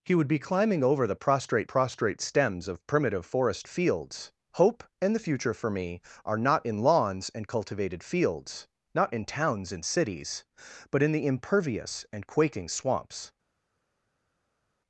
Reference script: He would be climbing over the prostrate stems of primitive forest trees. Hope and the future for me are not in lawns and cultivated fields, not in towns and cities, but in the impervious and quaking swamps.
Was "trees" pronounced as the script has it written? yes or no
no